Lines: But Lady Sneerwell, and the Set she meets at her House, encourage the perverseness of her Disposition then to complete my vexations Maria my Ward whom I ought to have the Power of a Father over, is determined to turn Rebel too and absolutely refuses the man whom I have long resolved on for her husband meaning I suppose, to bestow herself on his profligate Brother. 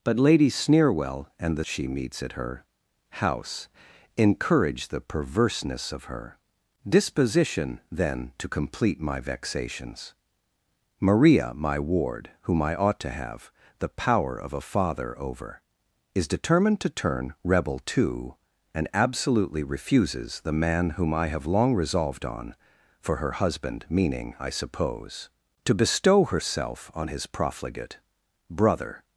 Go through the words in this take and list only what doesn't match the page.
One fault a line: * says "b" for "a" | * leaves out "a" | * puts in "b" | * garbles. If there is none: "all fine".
* leaves out "Set"